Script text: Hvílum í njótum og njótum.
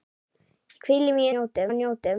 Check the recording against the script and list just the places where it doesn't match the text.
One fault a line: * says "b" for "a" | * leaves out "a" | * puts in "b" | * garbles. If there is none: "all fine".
all fine